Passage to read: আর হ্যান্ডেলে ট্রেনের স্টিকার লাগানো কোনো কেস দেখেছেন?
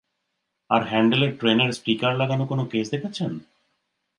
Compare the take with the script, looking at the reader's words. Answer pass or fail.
pass